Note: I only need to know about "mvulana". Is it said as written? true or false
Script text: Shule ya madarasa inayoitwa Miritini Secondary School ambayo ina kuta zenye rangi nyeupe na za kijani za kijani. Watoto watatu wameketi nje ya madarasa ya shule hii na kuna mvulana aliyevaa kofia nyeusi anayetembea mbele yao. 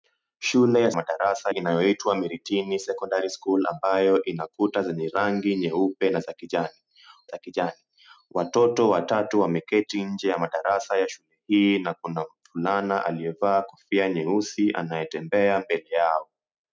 true